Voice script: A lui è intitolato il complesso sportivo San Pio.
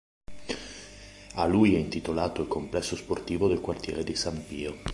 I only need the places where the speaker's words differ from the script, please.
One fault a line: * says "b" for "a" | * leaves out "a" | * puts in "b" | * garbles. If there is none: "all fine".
* puts in "del quartiere di"